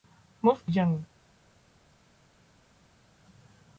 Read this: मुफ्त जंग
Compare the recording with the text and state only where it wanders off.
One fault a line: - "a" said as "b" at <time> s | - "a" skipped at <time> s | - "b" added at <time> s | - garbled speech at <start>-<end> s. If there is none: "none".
none